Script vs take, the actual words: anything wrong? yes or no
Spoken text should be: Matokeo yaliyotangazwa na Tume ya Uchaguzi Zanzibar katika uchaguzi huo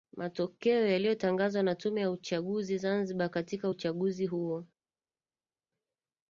no